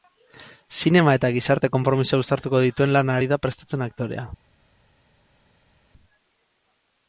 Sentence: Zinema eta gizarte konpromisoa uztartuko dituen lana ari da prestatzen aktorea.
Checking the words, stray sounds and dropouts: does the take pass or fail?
pass